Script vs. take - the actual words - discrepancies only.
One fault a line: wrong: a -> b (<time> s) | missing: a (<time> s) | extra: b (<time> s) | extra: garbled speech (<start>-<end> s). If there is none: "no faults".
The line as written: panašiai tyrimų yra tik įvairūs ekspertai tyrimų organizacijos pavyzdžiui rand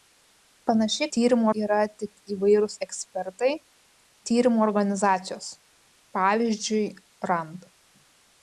no faults